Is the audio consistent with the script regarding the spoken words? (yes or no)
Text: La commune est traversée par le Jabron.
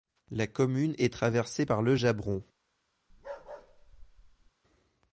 yes